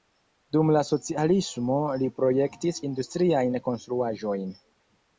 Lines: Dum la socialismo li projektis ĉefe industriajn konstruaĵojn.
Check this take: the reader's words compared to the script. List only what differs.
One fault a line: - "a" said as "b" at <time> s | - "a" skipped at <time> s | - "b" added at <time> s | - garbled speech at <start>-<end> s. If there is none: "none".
- "ĉefe" skipped at 2.8 s